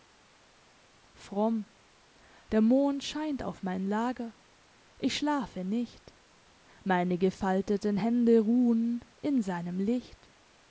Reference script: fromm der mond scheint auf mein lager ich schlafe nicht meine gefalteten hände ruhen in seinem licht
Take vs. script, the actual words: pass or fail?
pass